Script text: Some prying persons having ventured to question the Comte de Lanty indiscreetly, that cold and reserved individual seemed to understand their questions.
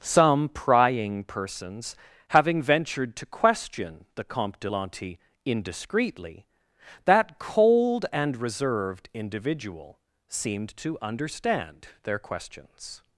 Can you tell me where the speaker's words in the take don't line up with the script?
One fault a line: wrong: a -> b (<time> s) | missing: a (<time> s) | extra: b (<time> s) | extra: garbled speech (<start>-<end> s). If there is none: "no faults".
no faults